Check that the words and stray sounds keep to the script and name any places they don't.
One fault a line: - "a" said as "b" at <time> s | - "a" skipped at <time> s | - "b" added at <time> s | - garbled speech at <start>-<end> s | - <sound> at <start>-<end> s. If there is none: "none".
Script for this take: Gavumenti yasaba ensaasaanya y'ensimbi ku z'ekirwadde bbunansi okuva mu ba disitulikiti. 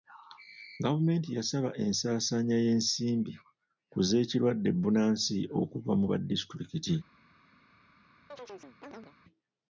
- chirp at 8.3-9.2 s